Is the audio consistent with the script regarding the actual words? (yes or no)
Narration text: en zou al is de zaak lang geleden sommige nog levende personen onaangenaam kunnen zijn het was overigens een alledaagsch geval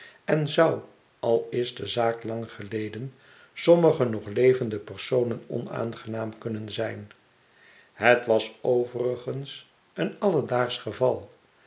yes